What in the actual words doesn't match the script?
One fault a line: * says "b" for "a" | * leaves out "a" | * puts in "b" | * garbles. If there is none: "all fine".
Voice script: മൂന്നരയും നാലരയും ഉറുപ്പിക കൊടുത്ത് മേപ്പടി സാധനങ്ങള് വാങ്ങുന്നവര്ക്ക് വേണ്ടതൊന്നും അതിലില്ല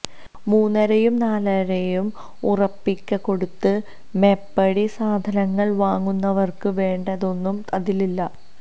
all fine